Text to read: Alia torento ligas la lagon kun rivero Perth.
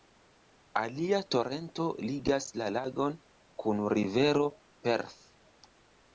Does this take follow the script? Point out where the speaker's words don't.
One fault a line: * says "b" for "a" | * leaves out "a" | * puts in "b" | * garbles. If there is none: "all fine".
all fine